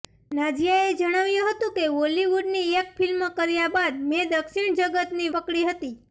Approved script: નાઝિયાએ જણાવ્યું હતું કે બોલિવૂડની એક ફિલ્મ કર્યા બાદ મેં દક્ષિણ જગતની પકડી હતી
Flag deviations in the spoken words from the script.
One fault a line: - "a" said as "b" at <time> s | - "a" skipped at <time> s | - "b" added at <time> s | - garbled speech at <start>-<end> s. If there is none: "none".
none